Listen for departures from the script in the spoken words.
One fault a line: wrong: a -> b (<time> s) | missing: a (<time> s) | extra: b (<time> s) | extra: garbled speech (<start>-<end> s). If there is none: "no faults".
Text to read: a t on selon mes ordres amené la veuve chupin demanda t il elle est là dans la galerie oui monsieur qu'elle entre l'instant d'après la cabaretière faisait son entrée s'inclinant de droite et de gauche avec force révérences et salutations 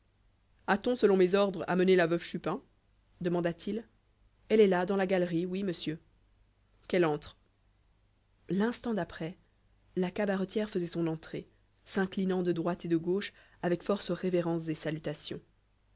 no faults